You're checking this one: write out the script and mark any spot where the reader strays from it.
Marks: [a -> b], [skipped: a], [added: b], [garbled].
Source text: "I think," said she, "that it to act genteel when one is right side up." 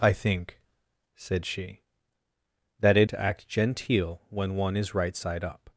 "I think," said she, "that it to act genteel when one is right side up."